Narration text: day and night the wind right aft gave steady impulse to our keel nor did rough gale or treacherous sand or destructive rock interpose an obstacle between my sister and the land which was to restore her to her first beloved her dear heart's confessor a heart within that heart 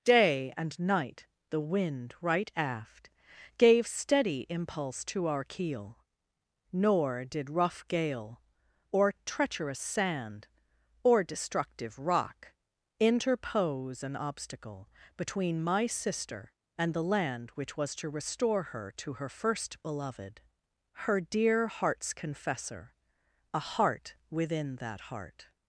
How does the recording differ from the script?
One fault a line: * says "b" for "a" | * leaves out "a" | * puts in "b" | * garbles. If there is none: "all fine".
all fine